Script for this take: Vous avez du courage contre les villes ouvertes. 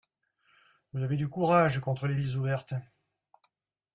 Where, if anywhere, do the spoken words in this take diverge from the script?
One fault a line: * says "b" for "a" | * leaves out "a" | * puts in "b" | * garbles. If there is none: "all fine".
all fine